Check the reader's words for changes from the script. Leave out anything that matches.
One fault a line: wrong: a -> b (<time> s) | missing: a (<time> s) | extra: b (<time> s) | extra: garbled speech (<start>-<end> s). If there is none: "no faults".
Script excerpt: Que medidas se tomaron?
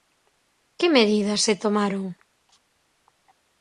no faults